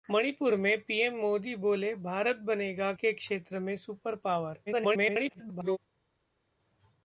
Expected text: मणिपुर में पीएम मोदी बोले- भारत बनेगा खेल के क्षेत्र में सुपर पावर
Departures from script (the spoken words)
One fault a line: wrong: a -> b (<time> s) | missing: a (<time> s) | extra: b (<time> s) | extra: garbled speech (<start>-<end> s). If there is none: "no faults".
missing: खेल (2.9 s)
extra: garbled speech (4.7-5.8 s)